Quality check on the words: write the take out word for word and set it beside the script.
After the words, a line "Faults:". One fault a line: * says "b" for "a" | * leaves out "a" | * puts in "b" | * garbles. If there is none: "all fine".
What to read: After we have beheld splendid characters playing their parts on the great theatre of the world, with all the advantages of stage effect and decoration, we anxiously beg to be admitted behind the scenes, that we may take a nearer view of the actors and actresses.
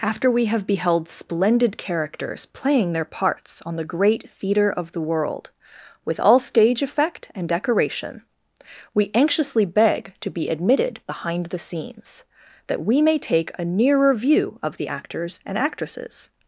After we have beheld splendid characters playing their parts on the great theatre of the world, with all stage effect and decoration, we anxiously beg to be admitted behind the scenes, that we may take a nearer view of the actors and actresses.
Faults:
* leaves out "the advantages of"